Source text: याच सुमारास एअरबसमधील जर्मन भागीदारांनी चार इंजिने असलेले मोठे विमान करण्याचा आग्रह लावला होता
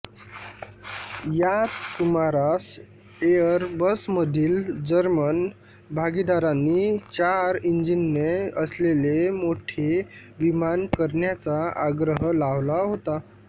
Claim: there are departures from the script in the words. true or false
false